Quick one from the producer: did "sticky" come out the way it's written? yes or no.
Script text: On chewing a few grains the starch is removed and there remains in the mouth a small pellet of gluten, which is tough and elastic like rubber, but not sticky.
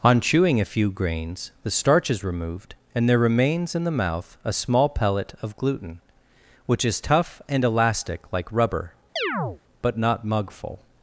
no